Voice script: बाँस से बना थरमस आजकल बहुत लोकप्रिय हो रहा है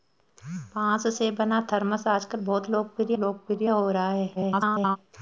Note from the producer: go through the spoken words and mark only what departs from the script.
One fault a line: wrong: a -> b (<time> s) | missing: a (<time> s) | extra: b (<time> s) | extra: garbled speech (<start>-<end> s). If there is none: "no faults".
extra: लोकप्रिय (3.2 s)
extra: garbled speech (4.4-5.0 s)